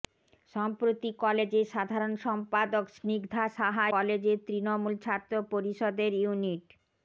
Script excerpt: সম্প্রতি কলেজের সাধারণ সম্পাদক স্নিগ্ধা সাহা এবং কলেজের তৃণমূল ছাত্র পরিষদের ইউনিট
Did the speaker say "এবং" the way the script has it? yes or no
no